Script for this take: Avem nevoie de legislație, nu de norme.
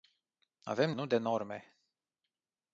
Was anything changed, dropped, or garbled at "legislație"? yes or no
yes